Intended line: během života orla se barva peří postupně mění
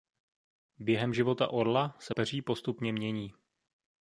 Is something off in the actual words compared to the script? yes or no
yes